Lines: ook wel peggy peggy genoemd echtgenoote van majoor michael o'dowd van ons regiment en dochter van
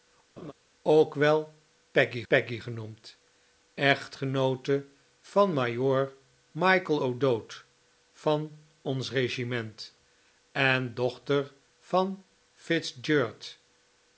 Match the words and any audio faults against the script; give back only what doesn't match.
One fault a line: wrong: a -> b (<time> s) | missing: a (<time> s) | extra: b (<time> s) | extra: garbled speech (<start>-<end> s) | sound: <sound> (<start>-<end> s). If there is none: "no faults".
sound: laugh (0.4-0.5 s)